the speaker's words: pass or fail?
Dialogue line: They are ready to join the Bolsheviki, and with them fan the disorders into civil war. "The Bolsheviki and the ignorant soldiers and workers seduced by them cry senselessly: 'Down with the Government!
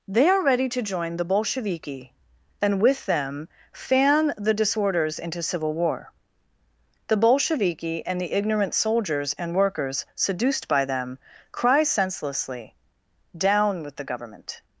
pass